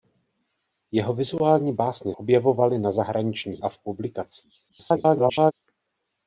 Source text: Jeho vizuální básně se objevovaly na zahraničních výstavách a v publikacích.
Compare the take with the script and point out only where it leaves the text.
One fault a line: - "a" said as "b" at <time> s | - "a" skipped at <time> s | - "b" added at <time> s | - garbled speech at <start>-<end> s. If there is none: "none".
- "se" skipped at 2.1 s
- "výstavách" skipped at 3.6 s
- garbled speech at 4.7-5.5 s